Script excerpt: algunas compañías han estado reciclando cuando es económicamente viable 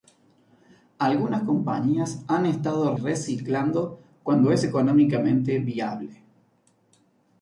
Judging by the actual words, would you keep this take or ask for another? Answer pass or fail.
pass